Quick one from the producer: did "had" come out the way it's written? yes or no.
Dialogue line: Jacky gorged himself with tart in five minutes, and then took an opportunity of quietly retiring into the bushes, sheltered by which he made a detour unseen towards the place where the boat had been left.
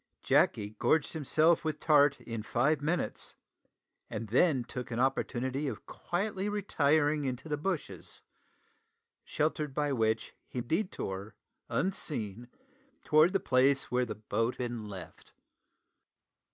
no